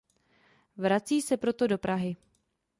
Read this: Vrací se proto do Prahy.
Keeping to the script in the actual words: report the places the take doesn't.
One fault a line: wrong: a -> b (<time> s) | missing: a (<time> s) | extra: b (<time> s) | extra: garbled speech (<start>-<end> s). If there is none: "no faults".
no faults